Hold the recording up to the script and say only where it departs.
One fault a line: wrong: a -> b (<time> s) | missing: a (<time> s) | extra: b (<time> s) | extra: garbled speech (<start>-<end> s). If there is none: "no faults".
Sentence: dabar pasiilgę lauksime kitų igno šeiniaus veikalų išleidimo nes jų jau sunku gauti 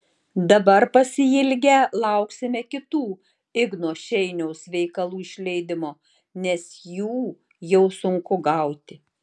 no faults